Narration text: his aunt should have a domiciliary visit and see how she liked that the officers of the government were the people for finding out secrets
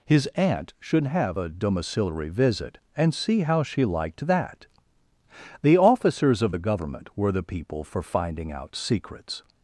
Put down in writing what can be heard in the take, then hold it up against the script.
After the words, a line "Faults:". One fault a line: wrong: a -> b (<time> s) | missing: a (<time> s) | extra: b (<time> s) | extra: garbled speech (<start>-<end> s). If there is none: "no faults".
his aunt should have a domiciliary visit and see how she liked that the officers of the government were the people for finding out secrets
Faults:
no faults